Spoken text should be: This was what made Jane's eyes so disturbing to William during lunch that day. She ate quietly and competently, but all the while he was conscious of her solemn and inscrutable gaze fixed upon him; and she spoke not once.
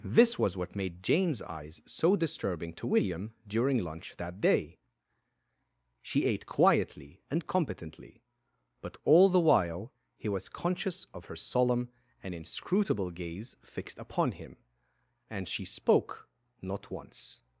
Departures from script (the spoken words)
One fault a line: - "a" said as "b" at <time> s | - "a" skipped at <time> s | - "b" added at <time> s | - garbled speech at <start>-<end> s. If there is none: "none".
none